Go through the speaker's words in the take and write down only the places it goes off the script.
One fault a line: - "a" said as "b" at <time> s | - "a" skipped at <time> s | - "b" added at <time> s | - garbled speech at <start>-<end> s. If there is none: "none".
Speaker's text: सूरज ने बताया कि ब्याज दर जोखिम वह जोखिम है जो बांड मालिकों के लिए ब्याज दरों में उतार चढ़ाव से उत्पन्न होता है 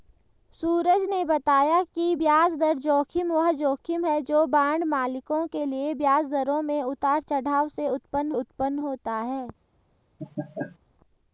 - "उत्पन्न" added at 8.3 s